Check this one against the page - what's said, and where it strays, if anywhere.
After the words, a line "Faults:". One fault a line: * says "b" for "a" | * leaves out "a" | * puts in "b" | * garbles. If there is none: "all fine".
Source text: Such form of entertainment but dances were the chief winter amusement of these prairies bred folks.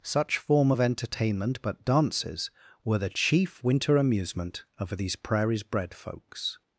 Such form of entertainment but dances were the chief winter amusement of these prairies bred folks.
Faults:
all fine